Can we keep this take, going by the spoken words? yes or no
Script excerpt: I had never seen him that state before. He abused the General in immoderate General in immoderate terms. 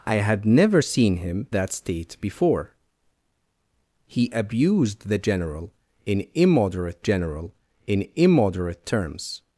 yes